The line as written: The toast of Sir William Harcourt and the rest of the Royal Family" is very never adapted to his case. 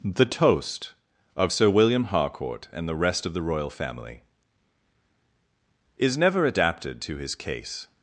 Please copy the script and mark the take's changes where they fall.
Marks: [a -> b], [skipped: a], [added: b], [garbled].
The toast of Sir William Harcourt and the rest of the Royal Family" is [skipped: very] never adapted to his case.